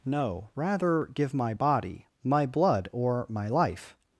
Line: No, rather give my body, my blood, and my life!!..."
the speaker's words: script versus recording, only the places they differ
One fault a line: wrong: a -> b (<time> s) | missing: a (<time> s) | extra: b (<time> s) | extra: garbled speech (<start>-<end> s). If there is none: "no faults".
wrong: and -> or (2.9 s)